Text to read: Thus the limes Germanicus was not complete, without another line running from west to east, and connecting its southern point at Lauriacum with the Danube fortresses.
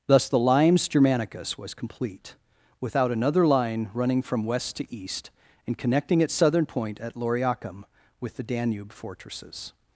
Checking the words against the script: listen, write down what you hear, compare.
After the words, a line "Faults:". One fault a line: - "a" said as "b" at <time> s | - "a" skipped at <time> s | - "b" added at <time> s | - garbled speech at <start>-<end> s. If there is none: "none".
Thus the limes Germanicus was complete, without another line running from west to east, and connecting its southern point at Lauriacum with the Danube fortresses.
Faults:
- "not" skipped at 1.7 s